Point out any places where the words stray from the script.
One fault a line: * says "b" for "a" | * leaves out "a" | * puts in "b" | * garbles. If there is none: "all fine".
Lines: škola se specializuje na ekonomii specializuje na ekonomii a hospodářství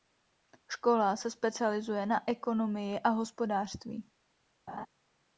* leaves out "specializuje na ekonomii"